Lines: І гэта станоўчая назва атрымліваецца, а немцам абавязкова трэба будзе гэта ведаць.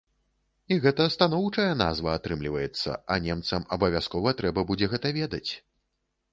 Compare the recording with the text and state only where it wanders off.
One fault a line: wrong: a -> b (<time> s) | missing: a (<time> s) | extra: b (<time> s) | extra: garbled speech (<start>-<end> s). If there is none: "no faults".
no faults